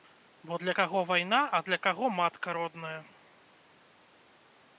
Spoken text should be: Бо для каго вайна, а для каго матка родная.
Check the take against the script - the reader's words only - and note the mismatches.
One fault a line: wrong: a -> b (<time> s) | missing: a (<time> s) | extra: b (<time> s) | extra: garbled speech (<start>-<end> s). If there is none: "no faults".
no faults